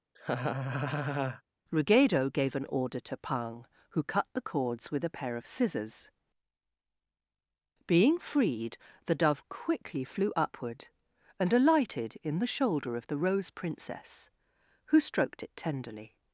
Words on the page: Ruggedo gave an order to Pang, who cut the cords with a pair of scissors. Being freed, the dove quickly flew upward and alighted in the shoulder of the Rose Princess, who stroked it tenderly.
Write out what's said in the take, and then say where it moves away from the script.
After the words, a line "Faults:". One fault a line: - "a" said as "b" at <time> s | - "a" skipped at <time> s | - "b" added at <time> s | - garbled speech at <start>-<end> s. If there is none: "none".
Ruggedo gave an order to Pang, who cut the cords with a pair of scissors. Being freed, the dove quickly flew upward and alighted in the shoulder of the Rose Princess, who stroked it tenderly.
Faults:
none